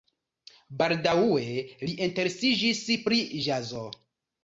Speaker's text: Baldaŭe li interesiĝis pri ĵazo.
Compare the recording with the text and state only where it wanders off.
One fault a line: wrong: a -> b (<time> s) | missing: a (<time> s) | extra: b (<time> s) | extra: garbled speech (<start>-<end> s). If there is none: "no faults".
no faults